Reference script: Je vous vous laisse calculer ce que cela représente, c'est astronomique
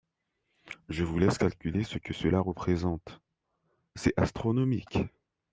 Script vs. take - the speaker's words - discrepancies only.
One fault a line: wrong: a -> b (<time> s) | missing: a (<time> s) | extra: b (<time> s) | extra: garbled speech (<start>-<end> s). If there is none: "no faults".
missing: vous (1.2 s)